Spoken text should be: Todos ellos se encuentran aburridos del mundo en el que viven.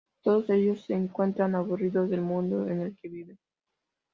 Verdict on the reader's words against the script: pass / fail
pass